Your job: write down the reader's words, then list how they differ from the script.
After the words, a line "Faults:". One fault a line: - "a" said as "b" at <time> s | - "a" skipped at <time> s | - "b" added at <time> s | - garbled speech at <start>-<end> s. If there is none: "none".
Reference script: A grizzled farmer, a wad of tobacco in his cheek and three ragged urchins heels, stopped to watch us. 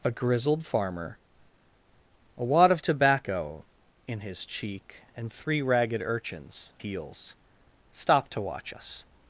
A grizzled farmer, a wad of tobacco in his cheek and three ragged urchins heels, stopped to watch us.
Faults:
none